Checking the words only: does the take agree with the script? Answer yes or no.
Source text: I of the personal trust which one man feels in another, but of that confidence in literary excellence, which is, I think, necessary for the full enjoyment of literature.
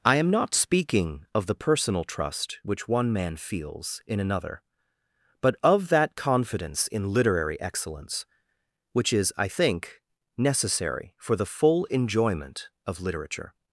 no